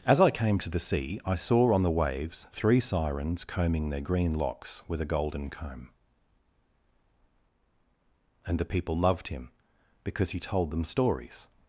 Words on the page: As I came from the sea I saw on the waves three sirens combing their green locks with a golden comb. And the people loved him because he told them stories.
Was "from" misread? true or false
true